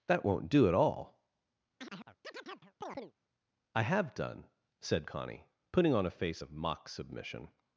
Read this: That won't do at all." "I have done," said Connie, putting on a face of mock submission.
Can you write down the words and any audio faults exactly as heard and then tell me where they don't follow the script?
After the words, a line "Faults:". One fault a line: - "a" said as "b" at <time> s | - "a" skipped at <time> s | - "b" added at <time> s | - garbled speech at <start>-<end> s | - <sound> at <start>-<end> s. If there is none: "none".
That won't do at all." "I have done," said Connie, putting on a face of mock submission.
Faults:
- chirp at 1.8-3.1 s